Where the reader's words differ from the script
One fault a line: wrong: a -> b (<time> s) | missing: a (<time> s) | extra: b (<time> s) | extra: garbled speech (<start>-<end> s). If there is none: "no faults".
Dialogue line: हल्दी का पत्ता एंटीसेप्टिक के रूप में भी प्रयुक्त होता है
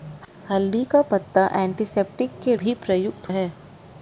missing: रूप में (2.5 s)
missing: होता (3.3 s)